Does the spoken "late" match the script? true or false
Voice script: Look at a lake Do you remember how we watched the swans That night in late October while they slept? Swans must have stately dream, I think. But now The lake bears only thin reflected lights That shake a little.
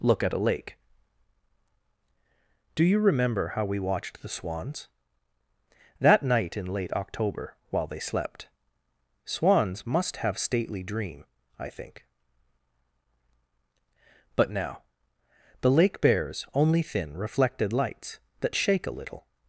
true